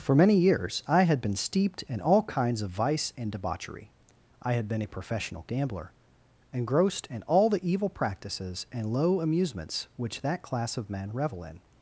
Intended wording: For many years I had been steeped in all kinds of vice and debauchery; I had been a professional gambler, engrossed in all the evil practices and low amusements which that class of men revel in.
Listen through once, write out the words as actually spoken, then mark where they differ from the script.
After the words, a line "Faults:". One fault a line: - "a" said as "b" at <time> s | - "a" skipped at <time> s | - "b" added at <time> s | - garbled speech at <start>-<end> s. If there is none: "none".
For many years I had been steeped in all kinds of vice and debauchery; I had been a professional gambler, engrossed in all the evil practices and low amusements which that class of men revel in.
Faults:
none